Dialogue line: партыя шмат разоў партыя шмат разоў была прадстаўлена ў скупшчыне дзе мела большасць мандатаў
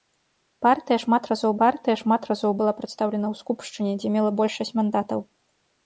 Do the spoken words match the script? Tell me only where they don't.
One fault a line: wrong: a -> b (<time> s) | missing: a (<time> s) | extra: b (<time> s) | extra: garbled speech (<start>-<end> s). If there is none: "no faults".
no faults